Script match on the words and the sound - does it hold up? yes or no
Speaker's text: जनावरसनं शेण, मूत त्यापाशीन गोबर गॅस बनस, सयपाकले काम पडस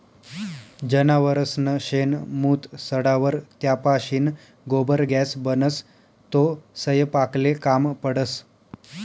no